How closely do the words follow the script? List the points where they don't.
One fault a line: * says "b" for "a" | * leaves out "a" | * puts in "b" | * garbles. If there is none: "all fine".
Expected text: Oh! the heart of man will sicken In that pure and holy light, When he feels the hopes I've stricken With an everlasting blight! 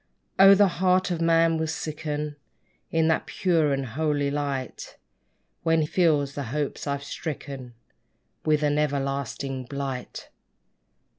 * leaves out "he"